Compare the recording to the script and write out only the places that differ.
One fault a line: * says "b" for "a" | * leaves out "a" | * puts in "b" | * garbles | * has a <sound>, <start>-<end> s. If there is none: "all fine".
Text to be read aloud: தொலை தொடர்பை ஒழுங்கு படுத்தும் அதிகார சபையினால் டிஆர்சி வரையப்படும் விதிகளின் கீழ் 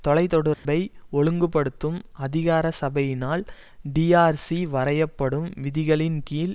* has a dropout, 0.5-0.7 s